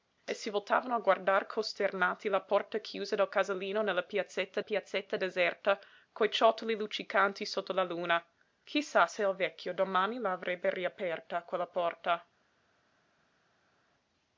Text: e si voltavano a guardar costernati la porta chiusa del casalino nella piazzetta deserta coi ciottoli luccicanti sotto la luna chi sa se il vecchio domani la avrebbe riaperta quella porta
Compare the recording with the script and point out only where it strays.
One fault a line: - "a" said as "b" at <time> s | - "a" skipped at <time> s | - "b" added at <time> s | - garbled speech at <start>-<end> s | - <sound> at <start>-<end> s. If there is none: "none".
- "piazzetta" added at 4.6 s